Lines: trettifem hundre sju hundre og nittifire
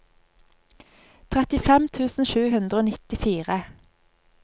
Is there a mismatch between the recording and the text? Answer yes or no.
yes